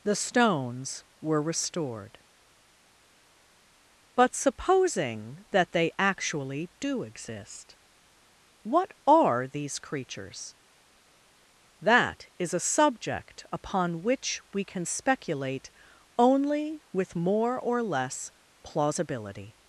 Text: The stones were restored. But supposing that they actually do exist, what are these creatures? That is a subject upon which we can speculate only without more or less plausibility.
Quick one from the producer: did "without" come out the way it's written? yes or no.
no